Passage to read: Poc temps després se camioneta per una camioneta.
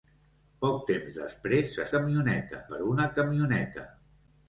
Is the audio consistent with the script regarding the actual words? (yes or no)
yes